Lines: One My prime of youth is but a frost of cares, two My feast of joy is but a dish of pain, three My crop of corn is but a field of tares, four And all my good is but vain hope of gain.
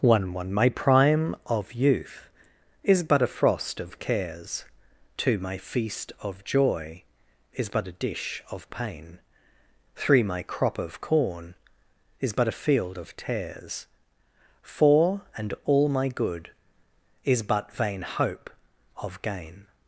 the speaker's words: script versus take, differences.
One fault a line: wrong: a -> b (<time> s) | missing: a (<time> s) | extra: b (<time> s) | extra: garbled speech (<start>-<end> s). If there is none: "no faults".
extra: one (0.3 s)